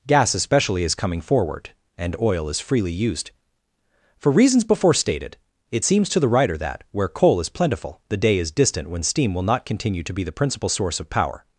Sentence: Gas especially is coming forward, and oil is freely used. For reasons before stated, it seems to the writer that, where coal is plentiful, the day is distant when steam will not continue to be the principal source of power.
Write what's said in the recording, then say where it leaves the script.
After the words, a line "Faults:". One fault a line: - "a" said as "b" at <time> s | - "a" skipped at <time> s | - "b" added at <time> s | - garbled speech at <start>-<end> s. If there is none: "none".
Gas especially is coming forward, and oil is freely used. For reasons before stated, it seems to the writer that, where coal is plentiful, the day is distant when steam will not continue to be the principal source of power.
Faults:
none